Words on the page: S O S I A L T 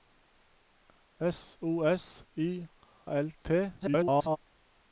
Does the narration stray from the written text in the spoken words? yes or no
yes